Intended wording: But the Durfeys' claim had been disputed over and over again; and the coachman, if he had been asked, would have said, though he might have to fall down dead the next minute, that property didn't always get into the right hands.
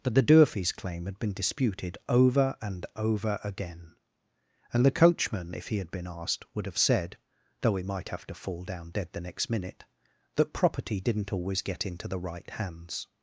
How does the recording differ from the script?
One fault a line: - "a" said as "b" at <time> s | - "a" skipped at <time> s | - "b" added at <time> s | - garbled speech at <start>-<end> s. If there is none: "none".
none